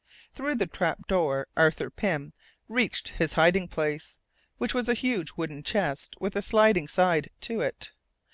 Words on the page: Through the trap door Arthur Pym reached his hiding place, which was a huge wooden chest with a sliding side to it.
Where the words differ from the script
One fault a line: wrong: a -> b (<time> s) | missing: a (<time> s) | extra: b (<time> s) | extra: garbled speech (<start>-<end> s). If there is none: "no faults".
no faults